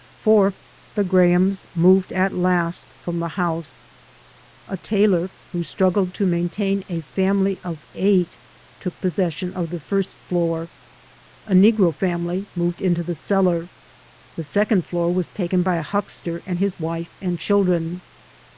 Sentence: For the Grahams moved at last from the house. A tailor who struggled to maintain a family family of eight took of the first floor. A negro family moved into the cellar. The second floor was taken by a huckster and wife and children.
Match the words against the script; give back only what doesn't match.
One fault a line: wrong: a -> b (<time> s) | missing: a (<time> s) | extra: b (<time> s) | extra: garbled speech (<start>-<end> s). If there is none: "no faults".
missing: family (7.6 s)
extra: possession (9.0 s)
extra: his (16.6 s)